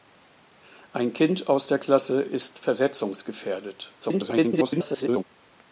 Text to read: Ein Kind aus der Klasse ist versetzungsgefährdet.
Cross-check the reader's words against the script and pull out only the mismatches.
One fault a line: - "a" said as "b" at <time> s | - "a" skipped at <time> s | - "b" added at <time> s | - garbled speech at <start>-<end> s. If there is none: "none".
- garbled speech at 4.0-5.2 s